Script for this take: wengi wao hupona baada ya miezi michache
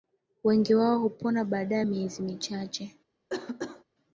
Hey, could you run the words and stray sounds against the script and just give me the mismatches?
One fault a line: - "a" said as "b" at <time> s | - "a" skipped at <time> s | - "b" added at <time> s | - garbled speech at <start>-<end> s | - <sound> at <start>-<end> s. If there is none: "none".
- cough at 3.3-3.8 s